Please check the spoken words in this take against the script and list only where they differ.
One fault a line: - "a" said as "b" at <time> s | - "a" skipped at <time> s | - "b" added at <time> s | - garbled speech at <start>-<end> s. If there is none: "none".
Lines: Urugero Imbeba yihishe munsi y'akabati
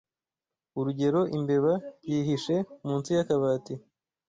none